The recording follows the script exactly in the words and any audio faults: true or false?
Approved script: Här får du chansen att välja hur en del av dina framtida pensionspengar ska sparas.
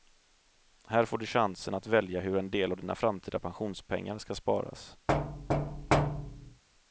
false